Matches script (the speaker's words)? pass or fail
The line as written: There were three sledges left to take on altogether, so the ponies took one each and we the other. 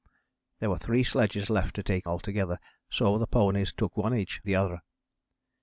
fail